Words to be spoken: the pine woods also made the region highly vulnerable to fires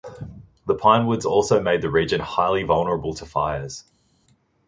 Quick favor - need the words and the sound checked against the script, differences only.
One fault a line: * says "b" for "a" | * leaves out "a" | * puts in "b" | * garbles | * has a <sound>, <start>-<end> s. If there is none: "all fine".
all fine